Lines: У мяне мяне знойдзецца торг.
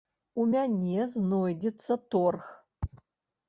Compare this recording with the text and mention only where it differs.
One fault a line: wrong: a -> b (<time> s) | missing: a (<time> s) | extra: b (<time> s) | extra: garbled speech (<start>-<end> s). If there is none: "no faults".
missing: мяне (1.1 s)